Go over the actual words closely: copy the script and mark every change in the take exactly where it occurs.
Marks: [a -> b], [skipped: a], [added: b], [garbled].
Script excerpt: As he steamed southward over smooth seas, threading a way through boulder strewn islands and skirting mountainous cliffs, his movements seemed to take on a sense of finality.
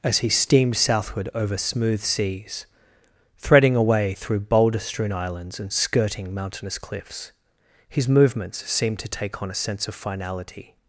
As he steamed southward over smooth seas, threading a way through boulder strewn islands and skirting mountainous cliffs, his movements seemed to take on a sense of finality.